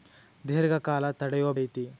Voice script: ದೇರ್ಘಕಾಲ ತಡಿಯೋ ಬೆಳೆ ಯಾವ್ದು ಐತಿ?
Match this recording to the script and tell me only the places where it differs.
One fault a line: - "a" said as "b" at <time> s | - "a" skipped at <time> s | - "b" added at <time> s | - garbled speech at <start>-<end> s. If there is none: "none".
- "ಬೆಳೆ ಯಾವ್ದು" skipped at 1.5 s